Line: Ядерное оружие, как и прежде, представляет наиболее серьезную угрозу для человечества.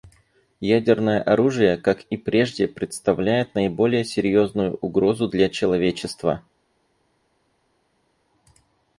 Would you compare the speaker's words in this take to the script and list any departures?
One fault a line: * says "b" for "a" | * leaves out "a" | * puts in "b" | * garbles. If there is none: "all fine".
all fine